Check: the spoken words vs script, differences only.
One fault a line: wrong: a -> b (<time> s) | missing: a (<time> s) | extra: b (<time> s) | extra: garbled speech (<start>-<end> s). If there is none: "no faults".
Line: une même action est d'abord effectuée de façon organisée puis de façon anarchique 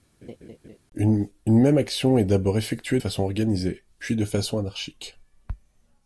missing: de (3.0 s)